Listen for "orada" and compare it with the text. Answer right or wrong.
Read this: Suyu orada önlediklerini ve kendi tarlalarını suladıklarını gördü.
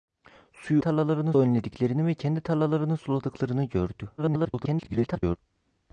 wrong